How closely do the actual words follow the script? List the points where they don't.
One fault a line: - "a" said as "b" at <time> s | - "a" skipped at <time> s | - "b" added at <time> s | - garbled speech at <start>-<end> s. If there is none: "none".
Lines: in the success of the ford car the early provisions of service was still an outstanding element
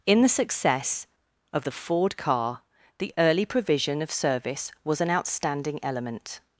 - "provisions" said as "provision" at 3.5 s
- "still" skipped at 5.0 s